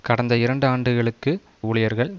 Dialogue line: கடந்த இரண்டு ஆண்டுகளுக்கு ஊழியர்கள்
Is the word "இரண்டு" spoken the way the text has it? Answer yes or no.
yes